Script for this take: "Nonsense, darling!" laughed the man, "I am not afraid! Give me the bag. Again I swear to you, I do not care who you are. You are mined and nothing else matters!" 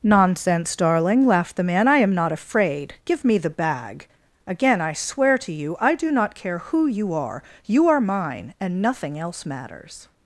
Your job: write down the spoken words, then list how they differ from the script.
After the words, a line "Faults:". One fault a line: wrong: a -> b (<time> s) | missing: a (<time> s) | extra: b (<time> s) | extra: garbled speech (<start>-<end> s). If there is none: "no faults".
"Nonsense, darling!" laughed the man, "I am not afraid! Give me the bag. Again I swear to you, I do not care who you are. You are mine and nothing else matters!"
Faults:
wrong: mined -> mine (8.0 s)